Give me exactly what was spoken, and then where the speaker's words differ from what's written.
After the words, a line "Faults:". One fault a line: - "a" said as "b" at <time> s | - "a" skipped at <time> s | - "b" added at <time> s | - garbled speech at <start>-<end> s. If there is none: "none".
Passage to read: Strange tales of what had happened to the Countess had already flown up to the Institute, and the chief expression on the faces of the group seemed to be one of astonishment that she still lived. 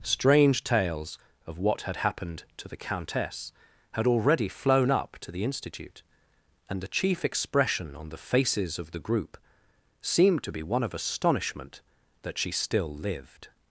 Strange tales of what had happened to the Countess had already flown up to the Institute, and the chief expression on the faces of the group seemed to be one of astonishment that she still lived.
Faults:
none